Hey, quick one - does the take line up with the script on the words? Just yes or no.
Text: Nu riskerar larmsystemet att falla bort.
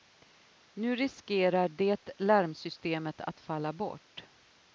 no